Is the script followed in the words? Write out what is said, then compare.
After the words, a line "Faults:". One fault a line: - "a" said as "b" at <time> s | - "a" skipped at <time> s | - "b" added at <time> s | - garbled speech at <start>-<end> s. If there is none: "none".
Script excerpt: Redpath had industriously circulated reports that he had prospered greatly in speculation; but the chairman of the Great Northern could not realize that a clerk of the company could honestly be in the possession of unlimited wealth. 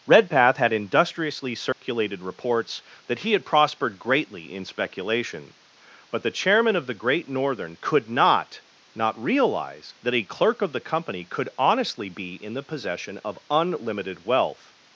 Redpath had industriously circulated reports that he had prospered greatly in speculation; but the chairman of the Great Northern could not not realize that a clerk of the company could honestly be in the possession of unlimited wealth.
Faults:
- "not" added at 8.9 s